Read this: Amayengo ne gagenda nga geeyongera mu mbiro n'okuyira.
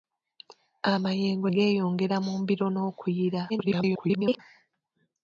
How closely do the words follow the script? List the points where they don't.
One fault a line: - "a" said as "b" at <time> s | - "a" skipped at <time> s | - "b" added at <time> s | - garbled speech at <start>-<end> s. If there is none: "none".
- "ne gagenda nga" skipped at 1.5 s
- garbled speech at 3.5-4.4 s